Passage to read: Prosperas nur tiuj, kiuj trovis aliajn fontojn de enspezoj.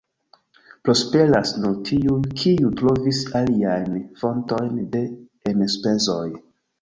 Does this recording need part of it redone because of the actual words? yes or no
no